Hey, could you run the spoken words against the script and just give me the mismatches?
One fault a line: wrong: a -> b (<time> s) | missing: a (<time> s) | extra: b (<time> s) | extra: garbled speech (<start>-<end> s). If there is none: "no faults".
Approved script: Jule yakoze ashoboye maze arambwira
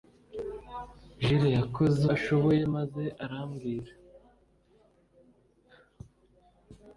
no faults